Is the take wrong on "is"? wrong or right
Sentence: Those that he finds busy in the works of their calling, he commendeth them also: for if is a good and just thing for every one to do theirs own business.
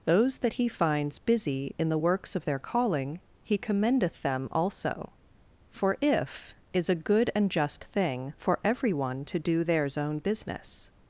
right